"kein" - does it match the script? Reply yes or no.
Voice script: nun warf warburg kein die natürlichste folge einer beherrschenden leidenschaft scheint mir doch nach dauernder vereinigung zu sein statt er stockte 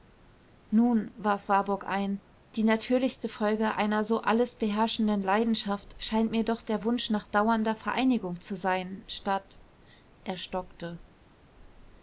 no